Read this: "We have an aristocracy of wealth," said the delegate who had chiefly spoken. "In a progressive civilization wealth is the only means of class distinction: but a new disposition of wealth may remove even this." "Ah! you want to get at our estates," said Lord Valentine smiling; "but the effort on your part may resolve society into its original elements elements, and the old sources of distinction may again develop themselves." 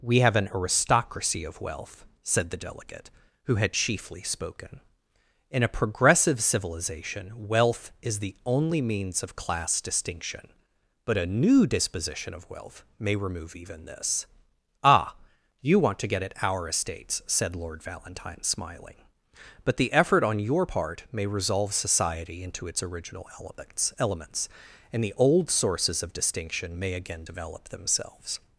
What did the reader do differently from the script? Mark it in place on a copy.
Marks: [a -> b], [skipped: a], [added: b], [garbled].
"We have an aristocracy of wealth," said the delegate who had chiefly spoken. "In a progressive civilization wealth is the only means of class distinction: but a new disposition of wealth may remove even this." "Ah! you want to get at our estates," said Lord Valentine smiling; "but the effort on your part may resolve society into its original elements elements, and the old sources of distinction may again develop themselves."